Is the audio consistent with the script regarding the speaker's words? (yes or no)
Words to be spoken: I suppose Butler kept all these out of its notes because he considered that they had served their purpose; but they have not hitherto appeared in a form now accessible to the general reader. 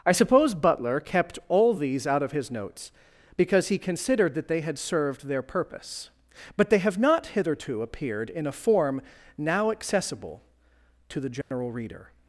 no